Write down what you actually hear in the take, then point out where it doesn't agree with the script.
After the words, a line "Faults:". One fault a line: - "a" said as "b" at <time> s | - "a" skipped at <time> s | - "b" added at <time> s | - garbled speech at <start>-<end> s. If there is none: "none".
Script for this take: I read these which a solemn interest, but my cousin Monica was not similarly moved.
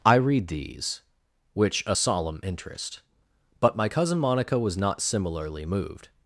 I read these which a solemn interest, but my cousin Monica was not similarly moved.
Faults:
none